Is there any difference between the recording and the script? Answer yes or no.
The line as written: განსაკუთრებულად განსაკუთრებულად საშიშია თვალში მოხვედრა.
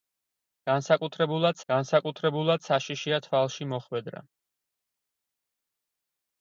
no